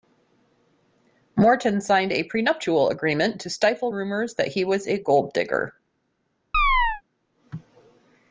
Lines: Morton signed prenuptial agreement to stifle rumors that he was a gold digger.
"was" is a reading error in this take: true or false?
false